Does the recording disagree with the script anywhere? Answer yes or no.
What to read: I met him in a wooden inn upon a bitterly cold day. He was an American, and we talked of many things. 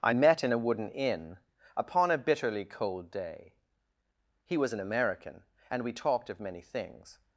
yes